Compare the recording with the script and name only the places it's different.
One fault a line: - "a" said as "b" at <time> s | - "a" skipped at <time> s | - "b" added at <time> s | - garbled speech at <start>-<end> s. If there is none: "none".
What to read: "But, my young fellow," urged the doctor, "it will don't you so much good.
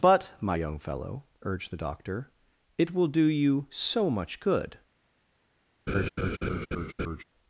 - "don't" said as "do" at 3.1 s